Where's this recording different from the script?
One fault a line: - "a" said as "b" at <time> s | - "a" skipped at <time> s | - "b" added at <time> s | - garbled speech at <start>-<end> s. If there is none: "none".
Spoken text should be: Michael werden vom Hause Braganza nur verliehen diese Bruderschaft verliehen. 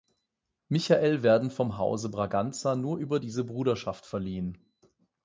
- "verliehen" said as "über" at 3.0 s